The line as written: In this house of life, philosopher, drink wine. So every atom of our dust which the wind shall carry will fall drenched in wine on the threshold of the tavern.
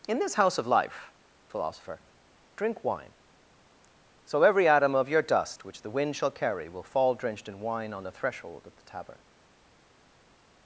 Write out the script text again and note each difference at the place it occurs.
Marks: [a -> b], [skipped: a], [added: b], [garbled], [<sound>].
In this house of life, philosopher, drink wine. So every atom of [our -> your] dust which the wind shall carry will fall drenched in wine on the threshold of the tavern.